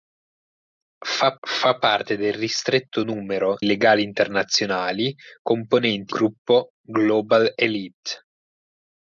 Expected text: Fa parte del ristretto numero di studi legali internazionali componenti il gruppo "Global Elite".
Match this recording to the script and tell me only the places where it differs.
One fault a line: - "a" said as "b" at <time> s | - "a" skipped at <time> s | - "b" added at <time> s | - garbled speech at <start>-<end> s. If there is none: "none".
- "fa" added at 1.5 s
- "di studi" skipped at 3.6 s
- "il" skipped at 6.1 s